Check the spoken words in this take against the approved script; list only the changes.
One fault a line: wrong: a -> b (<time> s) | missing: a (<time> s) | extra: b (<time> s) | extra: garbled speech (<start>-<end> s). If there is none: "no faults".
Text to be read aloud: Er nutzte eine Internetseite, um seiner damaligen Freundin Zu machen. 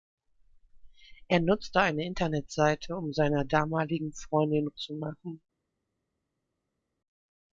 no faults